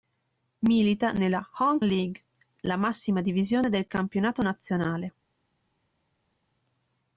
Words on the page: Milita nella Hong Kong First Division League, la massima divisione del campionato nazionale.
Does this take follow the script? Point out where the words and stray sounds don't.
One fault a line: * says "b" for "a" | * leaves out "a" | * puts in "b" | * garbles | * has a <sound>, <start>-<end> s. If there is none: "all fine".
* leaves out "Kong First Division"